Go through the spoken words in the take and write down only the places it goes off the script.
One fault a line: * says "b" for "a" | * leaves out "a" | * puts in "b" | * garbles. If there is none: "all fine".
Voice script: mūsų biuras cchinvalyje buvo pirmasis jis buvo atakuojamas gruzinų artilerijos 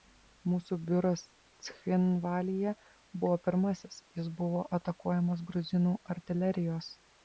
all fine